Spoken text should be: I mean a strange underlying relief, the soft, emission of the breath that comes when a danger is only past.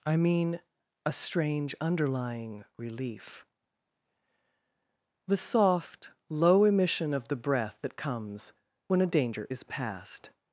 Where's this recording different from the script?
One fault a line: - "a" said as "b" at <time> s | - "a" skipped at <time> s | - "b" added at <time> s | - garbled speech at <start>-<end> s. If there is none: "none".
- "low" added at 6.3 s
- "only" skipped at 9.6 s